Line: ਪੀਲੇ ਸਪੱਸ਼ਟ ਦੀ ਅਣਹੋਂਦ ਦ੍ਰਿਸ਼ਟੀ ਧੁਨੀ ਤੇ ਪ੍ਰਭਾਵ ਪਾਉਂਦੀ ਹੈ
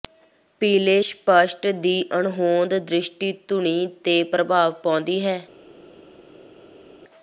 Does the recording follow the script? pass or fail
pass